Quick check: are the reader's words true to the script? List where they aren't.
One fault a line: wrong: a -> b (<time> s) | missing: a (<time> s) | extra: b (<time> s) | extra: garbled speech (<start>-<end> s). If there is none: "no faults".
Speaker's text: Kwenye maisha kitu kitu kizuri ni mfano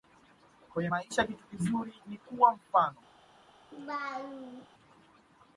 missing: kitu (1.4 s)
extra: kuwa (2.2 s)